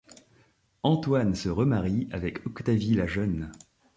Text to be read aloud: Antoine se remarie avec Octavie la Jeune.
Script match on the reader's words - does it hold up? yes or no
yes